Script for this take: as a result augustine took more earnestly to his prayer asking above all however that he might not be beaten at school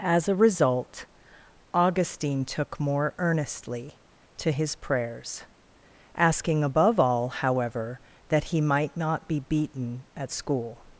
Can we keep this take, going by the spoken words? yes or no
no